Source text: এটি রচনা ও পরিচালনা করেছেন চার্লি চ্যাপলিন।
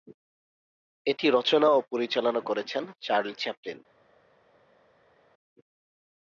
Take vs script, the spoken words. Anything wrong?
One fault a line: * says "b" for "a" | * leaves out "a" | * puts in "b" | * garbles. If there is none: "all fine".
all fine